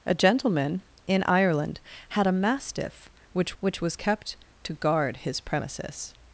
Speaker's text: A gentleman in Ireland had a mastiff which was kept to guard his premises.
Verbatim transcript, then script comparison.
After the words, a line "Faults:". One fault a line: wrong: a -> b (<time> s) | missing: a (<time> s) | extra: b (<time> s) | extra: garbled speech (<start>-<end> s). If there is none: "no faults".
A gentleman in Ireland had a mastiff which which was kept to guard his premises.
Faults:
extra: which (3.6 s)